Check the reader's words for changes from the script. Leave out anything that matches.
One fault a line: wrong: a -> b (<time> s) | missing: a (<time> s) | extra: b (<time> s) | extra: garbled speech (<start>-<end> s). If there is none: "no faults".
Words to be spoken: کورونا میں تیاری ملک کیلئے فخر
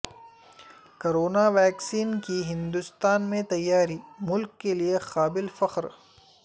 extra: ویکسین کی ہندوستان (1.5 s)
extra: قابل (5.0 s)